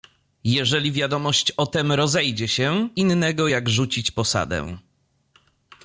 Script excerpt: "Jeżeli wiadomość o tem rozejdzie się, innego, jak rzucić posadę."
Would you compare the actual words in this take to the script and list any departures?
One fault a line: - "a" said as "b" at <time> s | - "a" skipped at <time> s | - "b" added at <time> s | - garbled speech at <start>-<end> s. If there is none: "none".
none